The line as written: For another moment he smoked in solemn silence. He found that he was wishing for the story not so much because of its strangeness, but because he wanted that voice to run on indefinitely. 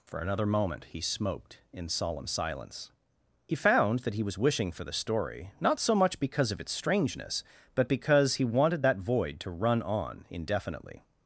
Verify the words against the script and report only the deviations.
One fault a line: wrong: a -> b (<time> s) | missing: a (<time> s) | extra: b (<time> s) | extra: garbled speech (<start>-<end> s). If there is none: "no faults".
wrong: voice -> void (9.0 s)